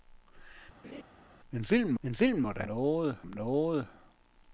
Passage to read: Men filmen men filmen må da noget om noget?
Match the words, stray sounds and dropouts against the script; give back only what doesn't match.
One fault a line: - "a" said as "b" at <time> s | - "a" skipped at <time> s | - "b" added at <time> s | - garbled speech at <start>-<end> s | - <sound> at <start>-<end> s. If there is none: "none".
- laugh at 0.8-1.0 s